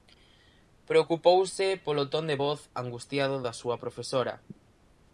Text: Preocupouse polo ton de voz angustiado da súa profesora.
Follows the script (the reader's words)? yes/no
yes